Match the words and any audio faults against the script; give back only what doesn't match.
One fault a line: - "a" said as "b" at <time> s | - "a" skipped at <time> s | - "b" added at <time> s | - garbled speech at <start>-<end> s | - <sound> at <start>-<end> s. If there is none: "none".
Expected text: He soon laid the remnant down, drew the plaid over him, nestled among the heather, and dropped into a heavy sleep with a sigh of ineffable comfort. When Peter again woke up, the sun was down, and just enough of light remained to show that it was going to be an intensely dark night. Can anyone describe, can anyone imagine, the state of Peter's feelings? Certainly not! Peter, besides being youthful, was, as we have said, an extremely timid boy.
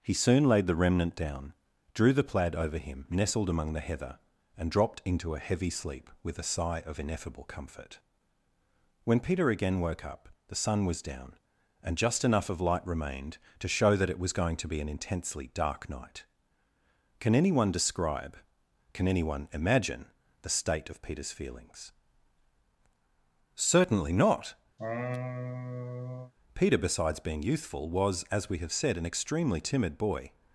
- laugh at 24.8-26.3 s